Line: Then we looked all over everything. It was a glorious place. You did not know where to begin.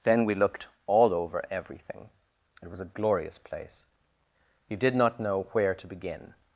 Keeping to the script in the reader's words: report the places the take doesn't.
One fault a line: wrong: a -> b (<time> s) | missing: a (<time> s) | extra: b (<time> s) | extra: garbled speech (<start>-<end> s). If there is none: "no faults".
no faults